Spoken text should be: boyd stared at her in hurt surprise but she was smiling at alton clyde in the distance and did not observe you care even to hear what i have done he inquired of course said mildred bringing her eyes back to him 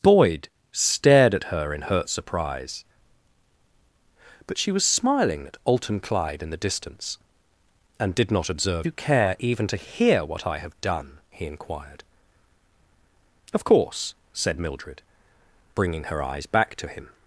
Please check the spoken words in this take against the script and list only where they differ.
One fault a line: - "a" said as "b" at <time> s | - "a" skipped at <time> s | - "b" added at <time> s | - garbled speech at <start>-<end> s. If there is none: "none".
none